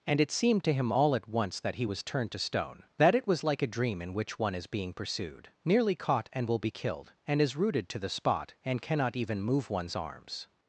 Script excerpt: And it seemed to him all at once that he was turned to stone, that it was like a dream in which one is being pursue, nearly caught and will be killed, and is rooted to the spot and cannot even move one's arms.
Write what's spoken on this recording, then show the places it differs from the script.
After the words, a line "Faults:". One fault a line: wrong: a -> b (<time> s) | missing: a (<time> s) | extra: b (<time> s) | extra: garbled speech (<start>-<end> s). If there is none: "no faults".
And it seemed to him all at once that he was turned to stone, that it was like a dream in which one is being pursued, nearly caught and will be killed, and is rooted to the spot and cannot even move one's arms.
Faults:
wrong: pursue -> pursued (4.9 s)